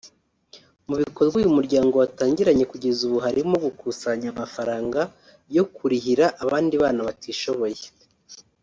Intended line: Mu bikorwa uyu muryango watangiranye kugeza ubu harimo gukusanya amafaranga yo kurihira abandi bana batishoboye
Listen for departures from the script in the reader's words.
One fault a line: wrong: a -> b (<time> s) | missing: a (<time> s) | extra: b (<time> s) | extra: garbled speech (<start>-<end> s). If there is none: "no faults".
no faults